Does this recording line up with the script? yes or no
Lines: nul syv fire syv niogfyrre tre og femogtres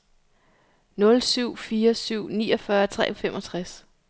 yes